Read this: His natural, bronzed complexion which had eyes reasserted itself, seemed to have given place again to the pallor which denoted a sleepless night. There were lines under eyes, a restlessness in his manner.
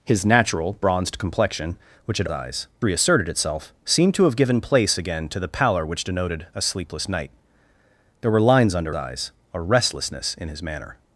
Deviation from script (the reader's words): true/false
false